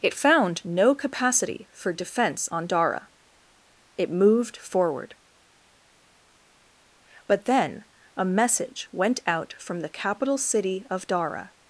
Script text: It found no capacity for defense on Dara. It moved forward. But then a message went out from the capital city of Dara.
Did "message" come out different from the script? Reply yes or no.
no